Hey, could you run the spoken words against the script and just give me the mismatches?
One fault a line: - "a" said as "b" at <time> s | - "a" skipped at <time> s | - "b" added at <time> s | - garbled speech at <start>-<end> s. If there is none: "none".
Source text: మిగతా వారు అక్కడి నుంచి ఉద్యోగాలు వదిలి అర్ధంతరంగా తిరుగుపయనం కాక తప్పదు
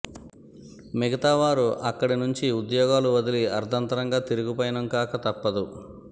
none